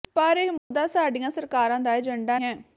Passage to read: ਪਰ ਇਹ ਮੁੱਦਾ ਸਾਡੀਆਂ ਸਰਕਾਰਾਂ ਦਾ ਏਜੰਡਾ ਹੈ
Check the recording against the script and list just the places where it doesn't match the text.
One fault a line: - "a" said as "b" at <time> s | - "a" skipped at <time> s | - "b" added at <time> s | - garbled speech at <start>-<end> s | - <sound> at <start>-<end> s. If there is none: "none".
- dropout at 0.6-0.7 s